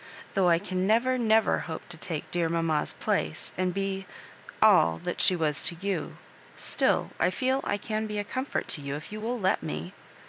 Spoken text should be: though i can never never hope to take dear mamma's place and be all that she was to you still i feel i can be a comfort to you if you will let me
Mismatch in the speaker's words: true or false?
false